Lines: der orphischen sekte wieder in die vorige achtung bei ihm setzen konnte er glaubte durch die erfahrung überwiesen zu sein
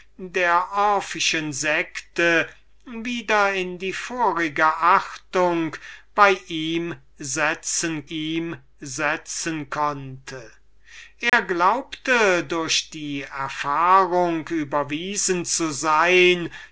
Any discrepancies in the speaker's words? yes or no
yes